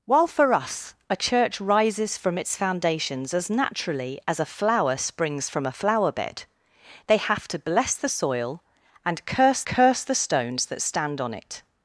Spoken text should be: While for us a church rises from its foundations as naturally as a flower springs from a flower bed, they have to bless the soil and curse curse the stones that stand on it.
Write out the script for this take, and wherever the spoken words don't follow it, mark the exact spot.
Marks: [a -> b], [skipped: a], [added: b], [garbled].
While for us a church rises from its foundations as naturally as a flower springs from a flower bed, they have to bless the soil and curse curse the stones that stand on it.